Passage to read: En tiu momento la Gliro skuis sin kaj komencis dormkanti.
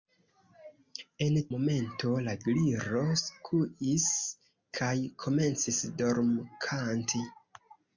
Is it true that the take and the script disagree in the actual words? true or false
true